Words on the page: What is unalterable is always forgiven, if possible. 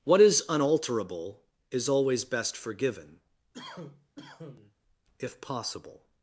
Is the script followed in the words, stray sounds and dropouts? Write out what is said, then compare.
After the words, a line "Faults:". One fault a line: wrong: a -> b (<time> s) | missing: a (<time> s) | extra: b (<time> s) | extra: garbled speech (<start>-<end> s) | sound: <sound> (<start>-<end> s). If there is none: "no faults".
What is unalterable is always best forgiven, if possible.
Faults:
extra: best (2.2 s)
sound: cough (3.5-4.8 s)